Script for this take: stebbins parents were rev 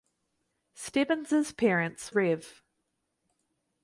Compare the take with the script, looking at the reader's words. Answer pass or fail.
fail